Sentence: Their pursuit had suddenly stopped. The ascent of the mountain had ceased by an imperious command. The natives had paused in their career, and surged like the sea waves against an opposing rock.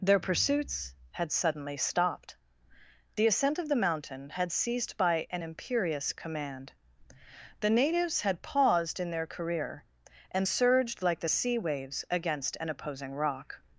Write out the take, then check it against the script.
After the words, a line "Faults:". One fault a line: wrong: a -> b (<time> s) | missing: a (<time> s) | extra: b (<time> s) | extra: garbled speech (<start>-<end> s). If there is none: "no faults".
Their pursuits had suddenly stopped. The ascent of the mountain had ceased by an imperious command. The natives had paused in their career, and surged like the sea waves against an opposing rock.
Faults:
wrong: pursuit -> pursuits (0.2 s)